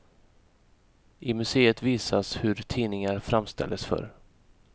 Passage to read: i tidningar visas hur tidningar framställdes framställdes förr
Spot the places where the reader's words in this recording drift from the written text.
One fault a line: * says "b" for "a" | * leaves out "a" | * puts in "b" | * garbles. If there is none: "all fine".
* says "museet" for "tidningar"
* leaves out "framställdes"